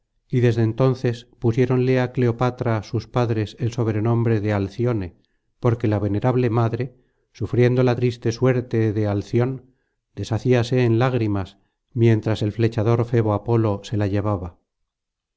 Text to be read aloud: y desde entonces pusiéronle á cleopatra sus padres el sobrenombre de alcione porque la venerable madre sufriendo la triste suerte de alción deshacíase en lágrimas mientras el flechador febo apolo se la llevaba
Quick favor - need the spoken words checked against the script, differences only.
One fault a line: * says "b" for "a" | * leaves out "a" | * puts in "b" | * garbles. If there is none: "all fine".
all fine